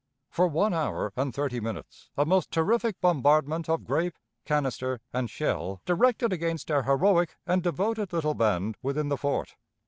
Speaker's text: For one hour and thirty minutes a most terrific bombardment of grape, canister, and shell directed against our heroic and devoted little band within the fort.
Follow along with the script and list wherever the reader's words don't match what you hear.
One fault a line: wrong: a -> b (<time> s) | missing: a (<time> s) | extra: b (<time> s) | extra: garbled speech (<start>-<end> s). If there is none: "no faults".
no faults